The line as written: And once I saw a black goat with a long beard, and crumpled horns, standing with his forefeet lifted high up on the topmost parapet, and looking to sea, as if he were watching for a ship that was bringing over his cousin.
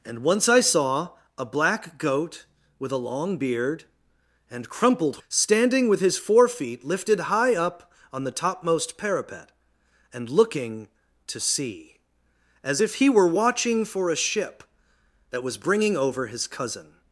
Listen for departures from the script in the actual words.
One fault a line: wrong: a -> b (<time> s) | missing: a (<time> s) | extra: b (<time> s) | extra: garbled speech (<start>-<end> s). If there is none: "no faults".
missing: horns (5.2 s)